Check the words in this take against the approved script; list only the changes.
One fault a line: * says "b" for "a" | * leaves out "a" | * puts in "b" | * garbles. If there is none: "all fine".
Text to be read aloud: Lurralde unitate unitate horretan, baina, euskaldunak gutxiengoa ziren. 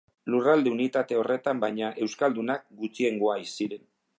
* leaves out "unitate"